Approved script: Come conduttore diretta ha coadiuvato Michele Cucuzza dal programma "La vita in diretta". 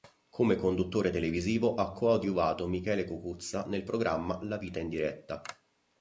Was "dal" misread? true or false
true